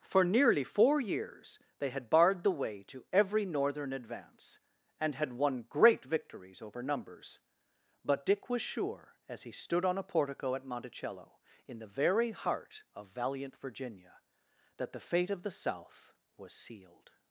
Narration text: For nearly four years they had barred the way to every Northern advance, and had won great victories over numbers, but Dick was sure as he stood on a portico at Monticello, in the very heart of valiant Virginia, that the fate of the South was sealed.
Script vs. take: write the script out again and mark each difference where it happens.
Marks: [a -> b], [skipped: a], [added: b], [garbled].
For nearly four years they had barred the way to every Northern advance, and had won great victories over numbers, but Dick was sure as he stood on a portico at Monticello, in the very heart of valiant Virginia, that the fate of the South was sealed.